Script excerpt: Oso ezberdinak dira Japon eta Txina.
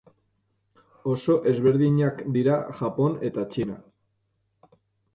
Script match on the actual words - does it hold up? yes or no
yes